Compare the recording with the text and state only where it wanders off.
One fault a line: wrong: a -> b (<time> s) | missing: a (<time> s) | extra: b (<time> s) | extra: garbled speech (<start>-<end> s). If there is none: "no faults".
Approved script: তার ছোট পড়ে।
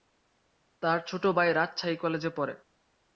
extra: ভাই রাজশাহী কলেজে (1.4 s)